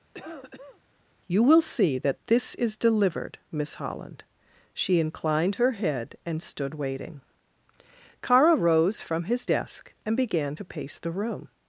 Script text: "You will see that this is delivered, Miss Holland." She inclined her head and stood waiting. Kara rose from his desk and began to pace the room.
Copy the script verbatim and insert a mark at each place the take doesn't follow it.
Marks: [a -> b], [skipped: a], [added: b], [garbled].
"You will see that this is delivered, Miss Holland." She inclined her head and stood waiting. Kara rose from his desk and began to pace the room.